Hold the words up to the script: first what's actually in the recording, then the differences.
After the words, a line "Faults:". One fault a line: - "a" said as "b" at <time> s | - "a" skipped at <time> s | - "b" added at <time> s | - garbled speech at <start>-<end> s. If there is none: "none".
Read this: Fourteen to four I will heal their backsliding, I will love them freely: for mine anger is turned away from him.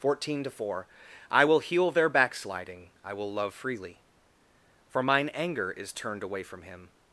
Fourteen to four I will heal their backsliding, I will love freely: for mine anger is turned away from him.
Faults:
- "them" skipped at 3.5 s